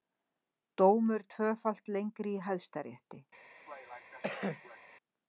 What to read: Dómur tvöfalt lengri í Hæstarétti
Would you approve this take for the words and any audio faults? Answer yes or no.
no